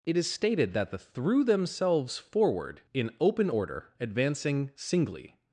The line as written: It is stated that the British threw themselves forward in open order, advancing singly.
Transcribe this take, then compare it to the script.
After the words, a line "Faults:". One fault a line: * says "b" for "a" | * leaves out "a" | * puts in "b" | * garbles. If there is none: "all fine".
It is stated that the threw themselves forward in open order, advancing singly.
Faults:
* leaves out "British"